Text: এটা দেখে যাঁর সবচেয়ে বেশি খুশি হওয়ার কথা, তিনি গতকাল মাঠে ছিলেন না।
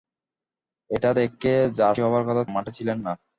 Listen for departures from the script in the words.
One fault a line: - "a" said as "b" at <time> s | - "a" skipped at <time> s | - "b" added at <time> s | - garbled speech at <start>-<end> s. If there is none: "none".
- "সবচেয়ে বেশি খুশি" skipped at 1.9 s
- "তিনি গতকাল" skipped at 2.4 s